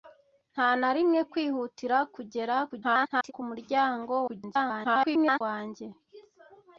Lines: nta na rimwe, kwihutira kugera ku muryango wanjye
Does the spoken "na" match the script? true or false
true